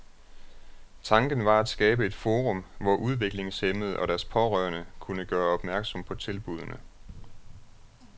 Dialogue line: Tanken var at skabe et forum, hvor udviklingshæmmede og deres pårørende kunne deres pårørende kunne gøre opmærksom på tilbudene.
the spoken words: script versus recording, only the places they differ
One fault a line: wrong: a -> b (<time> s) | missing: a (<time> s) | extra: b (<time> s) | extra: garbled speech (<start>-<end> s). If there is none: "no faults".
missing: deres pårørende kunne (5.2 s)